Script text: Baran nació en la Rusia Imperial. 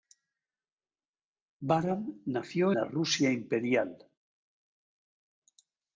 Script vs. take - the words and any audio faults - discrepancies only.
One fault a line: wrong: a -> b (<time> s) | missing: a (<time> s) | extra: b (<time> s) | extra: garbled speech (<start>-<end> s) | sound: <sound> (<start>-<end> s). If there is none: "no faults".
missing: en (2.7 s)